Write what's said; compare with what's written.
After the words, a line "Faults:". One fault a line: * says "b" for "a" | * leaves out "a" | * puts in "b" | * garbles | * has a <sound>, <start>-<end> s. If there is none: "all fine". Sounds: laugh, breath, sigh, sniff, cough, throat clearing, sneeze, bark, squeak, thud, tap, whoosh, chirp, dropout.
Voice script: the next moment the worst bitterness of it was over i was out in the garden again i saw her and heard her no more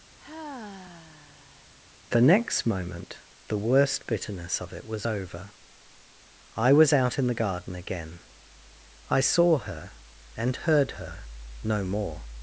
the next moment the worst bitterness of it was over i was out in the garden again i saw her and heard her no more
Faults:
* has a sigh, 0.2-1.7 s